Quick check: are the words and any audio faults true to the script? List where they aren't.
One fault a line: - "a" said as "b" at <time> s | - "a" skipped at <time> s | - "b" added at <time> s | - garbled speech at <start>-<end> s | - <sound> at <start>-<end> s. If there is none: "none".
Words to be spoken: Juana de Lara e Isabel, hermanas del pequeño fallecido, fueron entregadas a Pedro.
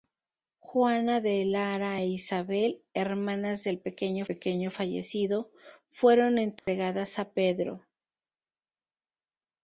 - "pequeño" added at 4.2 s
- dropout at 6.6-6.7 s